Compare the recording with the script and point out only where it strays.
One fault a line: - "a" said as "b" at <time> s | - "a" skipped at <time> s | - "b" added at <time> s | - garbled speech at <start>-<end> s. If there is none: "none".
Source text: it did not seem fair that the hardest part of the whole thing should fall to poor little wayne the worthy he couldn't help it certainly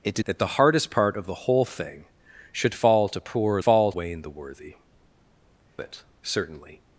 - "not seem fair" skipped at 0.2 s
- "little" said as "fall" at 3.6 s
- "he couldn't help" skipped at 4.7 s